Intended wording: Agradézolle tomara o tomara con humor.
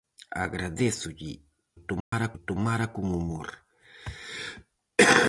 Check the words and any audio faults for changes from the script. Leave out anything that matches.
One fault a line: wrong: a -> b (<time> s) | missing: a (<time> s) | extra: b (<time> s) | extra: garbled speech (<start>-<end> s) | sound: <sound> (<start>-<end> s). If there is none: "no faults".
sound: dropout (2.0-2.1 s)